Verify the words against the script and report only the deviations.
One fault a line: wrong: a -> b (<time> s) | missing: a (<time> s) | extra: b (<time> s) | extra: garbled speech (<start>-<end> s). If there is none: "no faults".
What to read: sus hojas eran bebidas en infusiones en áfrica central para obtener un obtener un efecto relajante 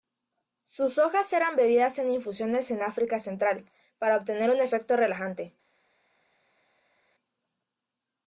missing: obtener un (4.6 s)